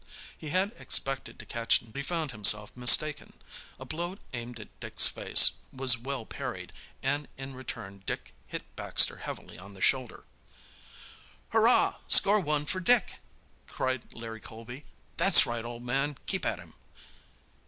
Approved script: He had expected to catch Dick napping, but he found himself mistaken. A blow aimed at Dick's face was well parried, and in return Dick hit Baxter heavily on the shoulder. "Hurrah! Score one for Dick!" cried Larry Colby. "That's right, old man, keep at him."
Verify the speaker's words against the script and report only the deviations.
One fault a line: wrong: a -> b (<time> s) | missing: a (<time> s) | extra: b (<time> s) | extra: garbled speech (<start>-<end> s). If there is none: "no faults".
missing: Dick napping but (1.8 s)